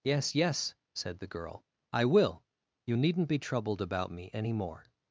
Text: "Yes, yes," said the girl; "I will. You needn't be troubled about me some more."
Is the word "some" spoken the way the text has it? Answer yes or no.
no